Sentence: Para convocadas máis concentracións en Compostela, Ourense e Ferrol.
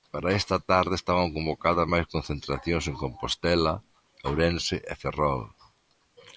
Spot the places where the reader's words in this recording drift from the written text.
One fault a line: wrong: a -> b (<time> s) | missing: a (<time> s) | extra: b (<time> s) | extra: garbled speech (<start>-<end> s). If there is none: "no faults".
extra: esta tarde estaban (0.4 s)